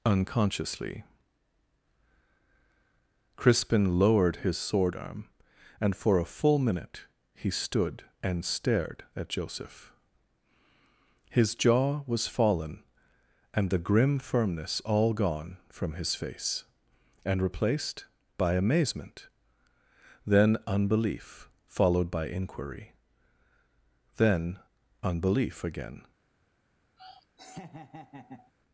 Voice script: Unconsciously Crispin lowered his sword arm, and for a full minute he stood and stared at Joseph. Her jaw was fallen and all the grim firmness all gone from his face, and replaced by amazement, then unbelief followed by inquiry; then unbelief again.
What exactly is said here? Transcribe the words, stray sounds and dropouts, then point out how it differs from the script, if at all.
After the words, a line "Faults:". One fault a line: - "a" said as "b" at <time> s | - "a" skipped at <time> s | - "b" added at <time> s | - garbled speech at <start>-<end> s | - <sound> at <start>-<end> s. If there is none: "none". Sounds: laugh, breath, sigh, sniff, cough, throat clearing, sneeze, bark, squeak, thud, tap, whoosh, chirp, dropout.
Unconsciously Crispin lowered his sword arm, and for a full minute he stood and stared at Joseph. His jaw was fallen and the grim firmness all gone from his face, and replaced by amazement, then unbelief followed by inquiry; then unbelief again.
Faults:
- "Her" said as "His" at 11.3 s
- "all" skipped at 13.7 s
- laugh at 27.0-28.5 s